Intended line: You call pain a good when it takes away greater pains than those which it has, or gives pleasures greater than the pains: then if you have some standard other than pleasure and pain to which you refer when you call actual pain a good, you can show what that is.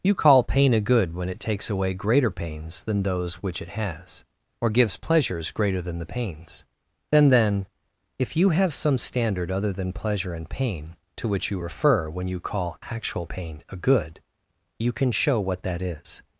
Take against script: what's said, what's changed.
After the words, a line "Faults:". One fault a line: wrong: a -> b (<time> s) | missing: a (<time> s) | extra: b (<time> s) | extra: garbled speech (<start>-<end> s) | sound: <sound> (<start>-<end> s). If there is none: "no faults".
You call pain a good when it takes away greater pains than those which it has, or gives pleasures greater than the pains: then then if you have some standard other than pleasure and pain to which you refer when you call actual pain a good, you can show what that is.
Faults:
extra: then (7.3 s)